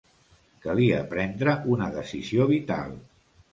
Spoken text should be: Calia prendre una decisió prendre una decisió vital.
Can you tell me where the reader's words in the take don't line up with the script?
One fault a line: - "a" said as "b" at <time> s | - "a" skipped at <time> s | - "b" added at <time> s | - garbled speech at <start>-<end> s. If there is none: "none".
- "prendre una decisió" skipped at 2.5 s